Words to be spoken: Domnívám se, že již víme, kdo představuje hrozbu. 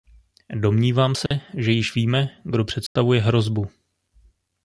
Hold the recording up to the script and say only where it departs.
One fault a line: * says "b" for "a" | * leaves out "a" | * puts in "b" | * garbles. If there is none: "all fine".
all fine